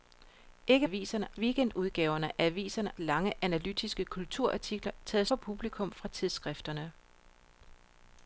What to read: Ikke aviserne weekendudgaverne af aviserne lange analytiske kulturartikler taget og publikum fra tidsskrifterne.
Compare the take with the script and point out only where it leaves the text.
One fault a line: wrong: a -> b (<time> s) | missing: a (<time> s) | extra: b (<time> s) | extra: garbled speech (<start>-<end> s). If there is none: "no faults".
no faults